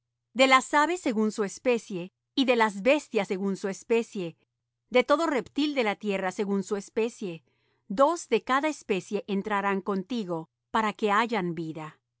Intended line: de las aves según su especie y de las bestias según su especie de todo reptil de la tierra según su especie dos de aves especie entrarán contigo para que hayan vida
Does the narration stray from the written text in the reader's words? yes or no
yes